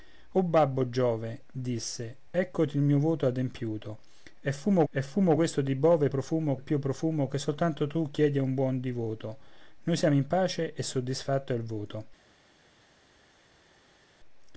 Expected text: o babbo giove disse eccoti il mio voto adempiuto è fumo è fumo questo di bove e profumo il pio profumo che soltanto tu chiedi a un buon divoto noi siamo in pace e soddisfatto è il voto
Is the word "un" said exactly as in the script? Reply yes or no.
yes